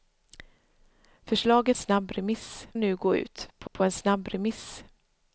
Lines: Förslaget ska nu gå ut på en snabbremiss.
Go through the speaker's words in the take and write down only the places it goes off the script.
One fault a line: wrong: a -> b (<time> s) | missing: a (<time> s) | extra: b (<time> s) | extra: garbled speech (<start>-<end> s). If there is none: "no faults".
wrong: ska -> snabbremiss (1.7 s)
extra: på (3.7 s)